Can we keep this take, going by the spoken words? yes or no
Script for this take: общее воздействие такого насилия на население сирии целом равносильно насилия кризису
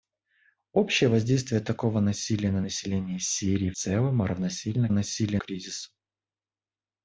yes